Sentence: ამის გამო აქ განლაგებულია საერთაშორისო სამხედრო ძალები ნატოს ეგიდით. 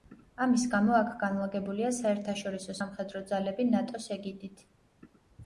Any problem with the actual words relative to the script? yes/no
no